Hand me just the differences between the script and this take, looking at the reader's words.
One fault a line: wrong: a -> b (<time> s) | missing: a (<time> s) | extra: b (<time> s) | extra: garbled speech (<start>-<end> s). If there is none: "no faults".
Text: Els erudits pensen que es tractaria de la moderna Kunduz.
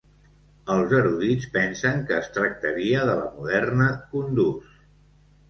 no faults